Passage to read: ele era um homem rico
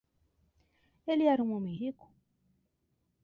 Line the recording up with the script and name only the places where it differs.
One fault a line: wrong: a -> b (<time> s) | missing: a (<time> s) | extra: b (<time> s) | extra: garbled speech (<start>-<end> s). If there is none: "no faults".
no faults